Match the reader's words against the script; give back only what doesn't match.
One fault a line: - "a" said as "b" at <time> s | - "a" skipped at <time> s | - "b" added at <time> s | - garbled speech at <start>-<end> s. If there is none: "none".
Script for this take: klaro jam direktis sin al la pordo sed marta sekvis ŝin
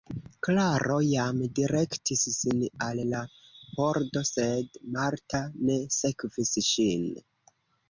- "ne" added at 5.7 s